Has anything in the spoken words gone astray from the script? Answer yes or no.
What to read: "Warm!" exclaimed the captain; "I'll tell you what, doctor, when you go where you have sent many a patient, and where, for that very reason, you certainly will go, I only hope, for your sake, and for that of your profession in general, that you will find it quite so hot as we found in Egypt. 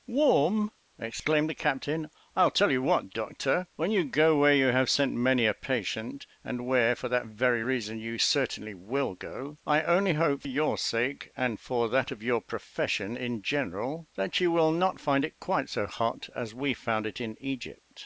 yes